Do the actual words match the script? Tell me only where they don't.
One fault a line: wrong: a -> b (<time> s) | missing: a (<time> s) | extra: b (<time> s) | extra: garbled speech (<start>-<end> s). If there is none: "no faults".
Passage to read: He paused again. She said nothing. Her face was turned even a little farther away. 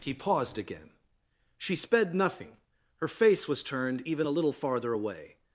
wrong: said -> sped (1.8 s)